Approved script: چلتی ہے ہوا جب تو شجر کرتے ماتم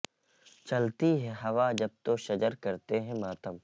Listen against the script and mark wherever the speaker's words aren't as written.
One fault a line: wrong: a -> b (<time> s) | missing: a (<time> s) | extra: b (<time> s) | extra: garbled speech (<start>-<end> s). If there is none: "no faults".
extra: ہیں (3.0 s)